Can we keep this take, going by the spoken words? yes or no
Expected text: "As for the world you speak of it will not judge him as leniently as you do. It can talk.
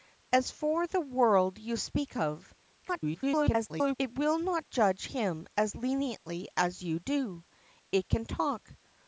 no